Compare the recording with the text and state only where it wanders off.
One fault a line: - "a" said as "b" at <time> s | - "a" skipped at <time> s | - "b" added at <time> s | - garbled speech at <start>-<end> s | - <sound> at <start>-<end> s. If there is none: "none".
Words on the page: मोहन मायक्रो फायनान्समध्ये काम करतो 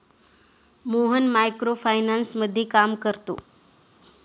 none